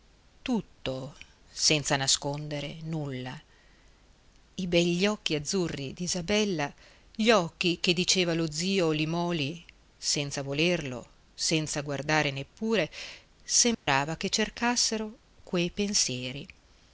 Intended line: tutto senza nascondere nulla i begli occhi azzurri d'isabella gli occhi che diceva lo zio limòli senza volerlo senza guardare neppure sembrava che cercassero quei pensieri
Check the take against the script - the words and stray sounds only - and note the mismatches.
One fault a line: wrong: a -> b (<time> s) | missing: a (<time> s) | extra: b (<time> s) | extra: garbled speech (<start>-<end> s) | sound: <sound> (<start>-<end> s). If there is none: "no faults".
sound: dropout (13.7-13.9 s)